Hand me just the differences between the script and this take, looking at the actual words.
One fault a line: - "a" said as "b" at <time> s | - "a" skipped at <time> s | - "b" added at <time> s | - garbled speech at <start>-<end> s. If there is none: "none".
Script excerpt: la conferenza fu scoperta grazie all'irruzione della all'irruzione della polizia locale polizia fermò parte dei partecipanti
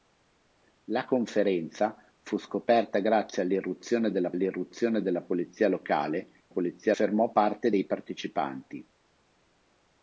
none